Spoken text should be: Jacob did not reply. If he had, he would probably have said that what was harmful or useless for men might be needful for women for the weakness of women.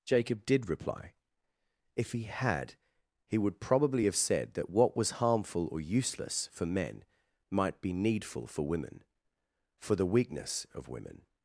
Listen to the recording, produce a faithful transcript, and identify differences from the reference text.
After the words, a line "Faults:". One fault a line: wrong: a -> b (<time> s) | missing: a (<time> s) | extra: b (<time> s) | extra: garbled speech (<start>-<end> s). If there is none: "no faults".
Jacob did reply. If he had, he would probably have said that what was harmful or useless for men might be needful for women for the weakness of women.
Faults:
missing: not (0.7 s)